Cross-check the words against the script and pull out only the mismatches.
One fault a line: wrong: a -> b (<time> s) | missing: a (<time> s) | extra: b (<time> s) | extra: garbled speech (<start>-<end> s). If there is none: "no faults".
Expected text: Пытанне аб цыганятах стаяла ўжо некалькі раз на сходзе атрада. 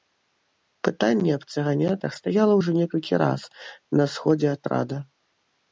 no faults